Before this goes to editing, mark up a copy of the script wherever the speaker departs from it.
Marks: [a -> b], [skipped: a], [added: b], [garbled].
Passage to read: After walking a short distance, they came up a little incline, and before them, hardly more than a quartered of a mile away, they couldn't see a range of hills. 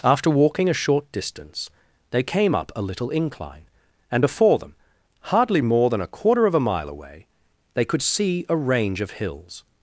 After walking a short distance, they came up a little incline, and before them, hardly more than a [quartered -> quarter] of a mile away, they [couldn't -> could] see a range of hills.